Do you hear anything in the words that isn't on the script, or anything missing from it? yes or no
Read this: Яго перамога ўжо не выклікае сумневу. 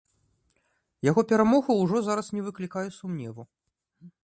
yes